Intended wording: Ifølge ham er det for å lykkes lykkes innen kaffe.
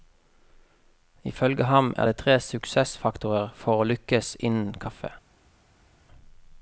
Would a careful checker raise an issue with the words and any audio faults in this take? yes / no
yes